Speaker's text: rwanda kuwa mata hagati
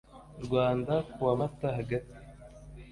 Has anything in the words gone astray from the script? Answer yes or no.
no